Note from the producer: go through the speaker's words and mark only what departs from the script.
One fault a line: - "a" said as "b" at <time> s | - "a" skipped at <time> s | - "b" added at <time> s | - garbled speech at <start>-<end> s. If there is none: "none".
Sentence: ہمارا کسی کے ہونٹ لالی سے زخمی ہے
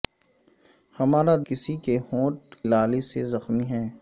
none